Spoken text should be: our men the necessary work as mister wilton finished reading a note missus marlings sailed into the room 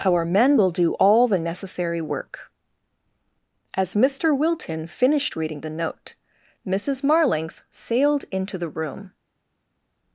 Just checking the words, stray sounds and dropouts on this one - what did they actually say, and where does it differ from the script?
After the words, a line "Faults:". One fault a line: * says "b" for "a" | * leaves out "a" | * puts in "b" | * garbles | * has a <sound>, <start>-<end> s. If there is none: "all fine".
our men will do all the necessary work as mister wilton finished reading the note missus marlings sailed into the room
Faults:
* puts in "will do all"
* says "the" for "a"